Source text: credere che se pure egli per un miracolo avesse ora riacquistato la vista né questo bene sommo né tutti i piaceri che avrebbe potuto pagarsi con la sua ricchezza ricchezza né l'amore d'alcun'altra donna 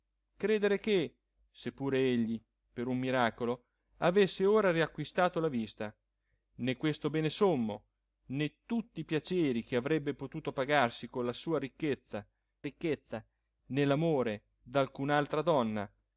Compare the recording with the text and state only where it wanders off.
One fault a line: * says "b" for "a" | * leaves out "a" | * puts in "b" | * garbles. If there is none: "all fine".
all fine